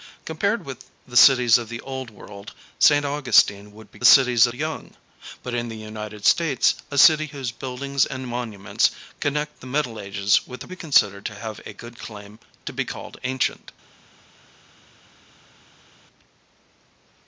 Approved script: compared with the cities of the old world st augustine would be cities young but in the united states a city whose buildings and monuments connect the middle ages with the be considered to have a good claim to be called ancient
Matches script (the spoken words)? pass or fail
pass